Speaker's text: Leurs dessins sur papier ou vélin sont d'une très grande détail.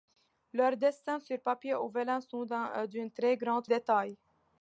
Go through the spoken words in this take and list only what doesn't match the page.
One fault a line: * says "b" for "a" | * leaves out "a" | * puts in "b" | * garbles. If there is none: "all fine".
all fine